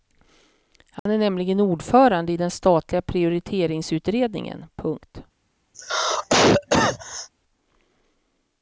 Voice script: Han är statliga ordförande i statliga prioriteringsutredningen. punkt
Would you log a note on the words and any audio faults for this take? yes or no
yes